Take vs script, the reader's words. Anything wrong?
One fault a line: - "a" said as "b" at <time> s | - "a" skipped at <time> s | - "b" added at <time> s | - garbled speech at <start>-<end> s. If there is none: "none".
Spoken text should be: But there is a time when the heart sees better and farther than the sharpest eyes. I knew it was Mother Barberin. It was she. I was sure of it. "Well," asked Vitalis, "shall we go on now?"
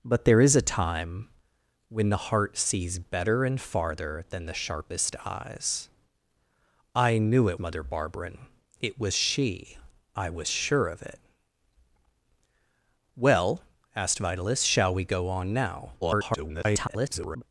- "was" skipped at 7.6 s
- garbled speech at 16.0-17.4 s